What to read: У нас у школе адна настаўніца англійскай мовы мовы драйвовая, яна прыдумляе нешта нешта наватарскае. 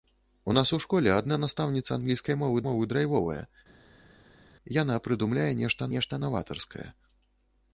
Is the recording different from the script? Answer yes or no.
no